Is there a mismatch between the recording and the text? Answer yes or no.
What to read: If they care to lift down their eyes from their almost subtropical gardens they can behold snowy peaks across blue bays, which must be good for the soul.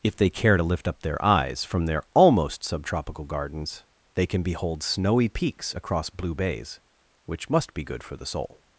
yes